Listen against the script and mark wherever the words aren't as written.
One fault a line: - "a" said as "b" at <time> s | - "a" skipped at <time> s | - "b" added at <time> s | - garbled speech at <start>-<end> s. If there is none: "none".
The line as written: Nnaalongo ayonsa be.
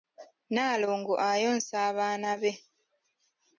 - "abaana" added at 1.9 s